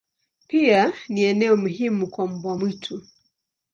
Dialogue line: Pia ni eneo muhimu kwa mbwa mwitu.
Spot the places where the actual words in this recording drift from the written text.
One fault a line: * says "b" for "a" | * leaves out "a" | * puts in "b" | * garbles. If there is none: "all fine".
all fine